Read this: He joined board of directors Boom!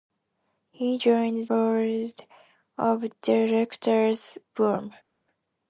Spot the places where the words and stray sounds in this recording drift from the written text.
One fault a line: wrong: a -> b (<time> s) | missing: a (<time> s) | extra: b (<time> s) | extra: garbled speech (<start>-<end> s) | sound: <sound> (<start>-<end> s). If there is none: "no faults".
no faults